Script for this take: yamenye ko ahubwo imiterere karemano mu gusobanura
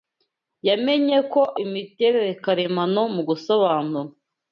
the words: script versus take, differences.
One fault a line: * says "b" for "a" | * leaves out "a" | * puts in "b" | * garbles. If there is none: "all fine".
* leaves out "ahubwo"